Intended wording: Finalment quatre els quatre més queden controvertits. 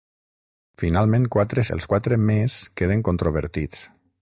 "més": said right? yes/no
yes